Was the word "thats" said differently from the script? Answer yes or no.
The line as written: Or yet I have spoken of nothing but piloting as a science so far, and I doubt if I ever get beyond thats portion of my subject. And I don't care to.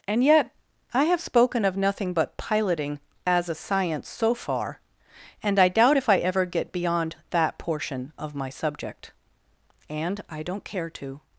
yes